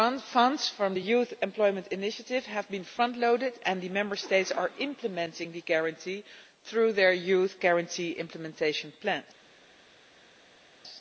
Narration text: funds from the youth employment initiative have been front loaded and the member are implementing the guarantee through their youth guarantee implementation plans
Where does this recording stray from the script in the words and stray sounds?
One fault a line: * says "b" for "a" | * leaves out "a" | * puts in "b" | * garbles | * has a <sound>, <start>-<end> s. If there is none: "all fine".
* puts in "states"